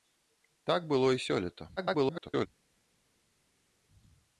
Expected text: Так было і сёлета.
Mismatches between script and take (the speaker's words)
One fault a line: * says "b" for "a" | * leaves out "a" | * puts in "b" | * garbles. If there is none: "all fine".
* garbles